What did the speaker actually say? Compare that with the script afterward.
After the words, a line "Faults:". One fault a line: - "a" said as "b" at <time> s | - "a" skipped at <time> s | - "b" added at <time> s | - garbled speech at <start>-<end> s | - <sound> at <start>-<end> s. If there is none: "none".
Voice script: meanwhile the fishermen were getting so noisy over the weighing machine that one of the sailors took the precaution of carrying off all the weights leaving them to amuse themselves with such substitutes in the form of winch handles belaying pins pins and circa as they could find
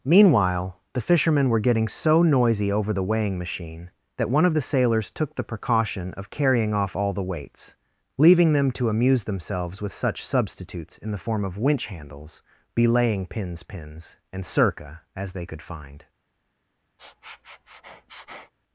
meanwhile the fishermen were getting so noisy over the weighing machine that one of the sailors took the precaution of carrying off all the weights leaving them to amuse themselves with such substitutes in the form of winch handles belaying pins pins and circa as they could find
Faults:
- sniff at 17.0-18.5 s